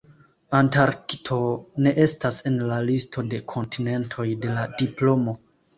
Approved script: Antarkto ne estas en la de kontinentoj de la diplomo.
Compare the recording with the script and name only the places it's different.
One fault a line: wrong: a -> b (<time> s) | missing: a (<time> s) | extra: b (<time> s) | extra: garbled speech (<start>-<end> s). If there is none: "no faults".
extra: listo (2.9 s)